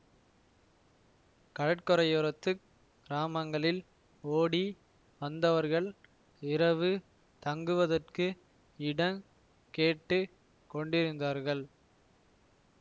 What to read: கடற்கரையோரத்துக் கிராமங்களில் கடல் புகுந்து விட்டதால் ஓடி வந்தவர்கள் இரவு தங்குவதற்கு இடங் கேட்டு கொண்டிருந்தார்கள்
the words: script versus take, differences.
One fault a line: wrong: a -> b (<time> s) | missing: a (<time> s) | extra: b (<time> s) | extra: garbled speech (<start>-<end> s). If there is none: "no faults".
missing: கடல் புகுந்து விட்டதால் (3.8 s)